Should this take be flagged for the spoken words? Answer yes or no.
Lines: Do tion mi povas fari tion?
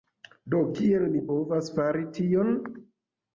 yes